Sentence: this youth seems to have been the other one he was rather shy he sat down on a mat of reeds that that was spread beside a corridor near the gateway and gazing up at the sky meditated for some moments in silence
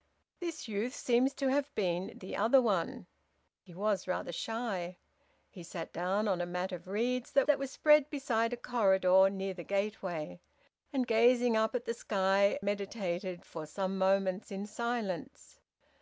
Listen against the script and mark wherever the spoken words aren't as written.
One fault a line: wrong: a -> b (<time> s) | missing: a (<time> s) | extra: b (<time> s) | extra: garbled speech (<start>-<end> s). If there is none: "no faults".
no faults